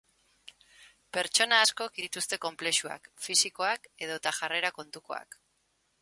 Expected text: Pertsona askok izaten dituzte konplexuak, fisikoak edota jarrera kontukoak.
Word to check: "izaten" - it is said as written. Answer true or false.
false